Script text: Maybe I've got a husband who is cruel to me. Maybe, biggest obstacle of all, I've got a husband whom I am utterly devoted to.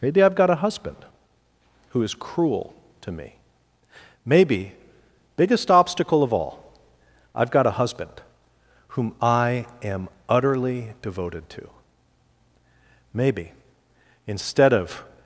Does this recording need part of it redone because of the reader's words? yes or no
yes